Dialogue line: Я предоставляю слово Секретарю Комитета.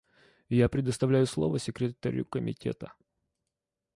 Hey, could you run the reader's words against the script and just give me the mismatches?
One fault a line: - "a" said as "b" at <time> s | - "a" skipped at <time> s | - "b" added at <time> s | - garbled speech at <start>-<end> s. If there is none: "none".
none